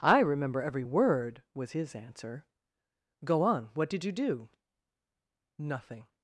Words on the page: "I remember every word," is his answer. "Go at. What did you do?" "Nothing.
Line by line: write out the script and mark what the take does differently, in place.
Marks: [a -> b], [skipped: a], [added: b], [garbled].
"I remember every word," [is -> was] his answer. "Go [at. -> on] What did you do?" "Nothing.